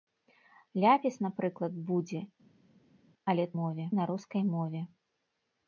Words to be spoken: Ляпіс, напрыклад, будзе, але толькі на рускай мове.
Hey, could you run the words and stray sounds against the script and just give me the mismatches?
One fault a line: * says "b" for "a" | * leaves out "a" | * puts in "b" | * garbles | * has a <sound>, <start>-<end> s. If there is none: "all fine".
* says "мове" for "толькі"